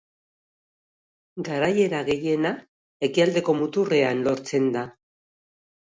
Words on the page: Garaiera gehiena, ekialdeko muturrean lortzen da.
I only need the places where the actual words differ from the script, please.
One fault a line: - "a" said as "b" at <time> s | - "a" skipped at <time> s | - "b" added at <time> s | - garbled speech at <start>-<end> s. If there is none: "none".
none